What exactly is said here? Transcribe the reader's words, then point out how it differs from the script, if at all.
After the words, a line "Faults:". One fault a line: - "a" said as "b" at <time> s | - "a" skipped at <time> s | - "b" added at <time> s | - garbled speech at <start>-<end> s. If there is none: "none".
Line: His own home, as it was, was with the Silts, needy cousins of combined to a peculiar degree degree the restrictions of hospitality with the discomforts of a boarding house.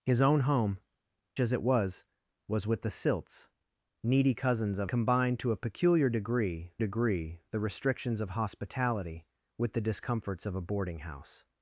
His own home, as it was, was with the Silts, needy cousins of combined to a peculiar degree degree the restrictions of hospitality with the discomforts of a boarding house.
Faults:
none